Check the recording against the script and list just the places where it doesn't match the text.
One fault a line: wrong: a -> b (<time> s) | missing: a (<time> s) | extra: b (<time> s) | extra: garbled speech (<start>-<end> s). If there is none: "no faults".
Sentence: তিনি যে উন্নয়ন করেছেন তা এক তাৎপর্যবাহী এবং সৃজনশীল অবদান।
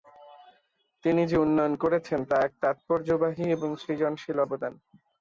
no faults